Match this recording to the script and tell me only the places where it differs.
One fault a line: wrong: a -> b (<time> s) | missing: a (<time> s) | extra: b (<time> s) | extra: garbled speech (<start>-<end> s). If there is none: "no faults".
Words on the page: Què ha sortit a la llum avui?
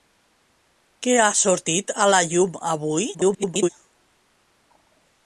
extra: garbled speech (3.1-3.7 s)